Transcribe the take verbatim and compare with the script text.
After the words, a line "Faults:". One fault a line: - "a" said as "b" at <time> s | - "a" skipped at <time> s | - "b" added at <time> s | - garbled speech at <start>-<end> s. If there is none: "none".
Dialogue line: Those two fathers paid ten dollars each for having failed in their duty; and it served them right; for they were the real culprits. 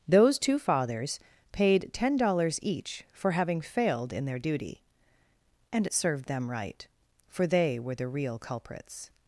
Those two fathers paid ten dollars each for having failed in their duty; and it served them right; for they were the real culprits.
Faults:
none